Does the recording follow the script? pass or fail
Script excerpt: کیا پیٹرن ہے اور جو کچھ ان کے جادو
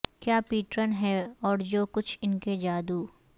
pass